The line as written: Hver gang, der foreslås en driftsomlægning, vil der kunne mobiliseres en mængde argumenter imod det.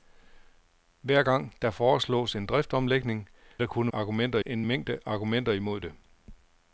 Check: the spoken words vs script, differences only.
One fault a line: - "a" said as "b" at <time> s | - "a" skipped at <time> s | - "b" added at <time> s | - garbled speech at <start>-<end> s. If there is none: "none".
- "vil" skipped at 3.3 s
- "mobiliseres" said as "argumenter" at 3.9 s